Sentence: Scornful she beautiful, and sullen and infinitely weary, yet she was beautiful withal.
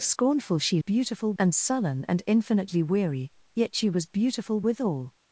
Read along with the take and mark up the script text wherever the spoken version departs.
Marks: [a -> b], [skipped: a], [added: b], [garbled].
Scornful she beautiful, and sullen and infinitely weary, yet she was beautiful withal.